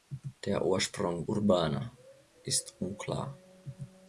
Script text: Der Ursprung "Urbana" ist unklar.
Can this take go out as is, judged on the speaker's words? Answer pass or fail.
pass